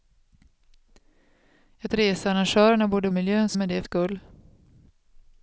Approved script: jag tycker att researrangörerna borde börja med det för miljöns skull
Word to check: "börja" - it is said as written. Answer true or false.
false